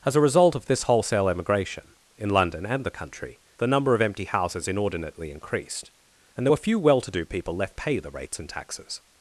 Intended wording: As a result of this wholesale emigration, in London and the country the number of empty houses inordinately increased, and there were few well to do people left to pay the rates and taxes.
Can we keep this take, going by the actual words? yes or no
no